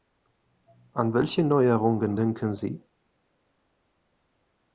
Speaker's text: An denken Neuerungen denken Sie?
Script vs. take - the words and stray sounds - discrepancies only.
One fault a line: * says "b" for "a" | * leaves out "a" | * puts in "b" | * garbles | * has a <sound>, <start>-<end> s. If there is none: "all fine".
* says "welche" for "denken"